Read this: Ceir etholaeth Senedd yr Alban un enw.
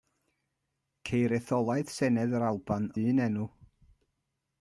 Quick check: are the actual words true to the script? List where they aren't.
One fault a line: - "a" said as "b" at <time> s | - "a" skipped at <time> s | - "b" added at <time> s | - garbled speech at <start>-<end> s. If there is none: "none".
none